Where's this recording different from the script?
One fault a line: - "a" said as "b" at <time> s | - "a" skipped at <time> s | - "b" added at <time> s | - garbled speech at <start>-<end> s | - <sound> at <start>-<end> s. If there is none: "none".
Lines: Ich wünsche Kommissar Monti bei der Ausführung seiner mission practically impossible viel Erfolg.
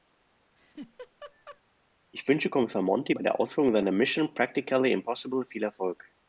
- laugh at 0.6-1.6 s